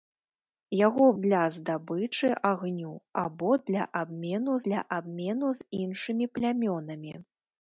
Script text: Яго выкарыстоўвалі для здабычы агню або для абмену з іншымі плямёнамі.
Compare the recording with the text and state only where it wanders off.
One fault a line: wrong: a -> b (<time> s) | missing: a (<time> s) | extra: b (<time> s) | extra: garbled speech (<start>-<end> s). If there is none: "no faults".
missing: выкарыстоўвалі (1.1 s)
extra: для абмену (4.7 s)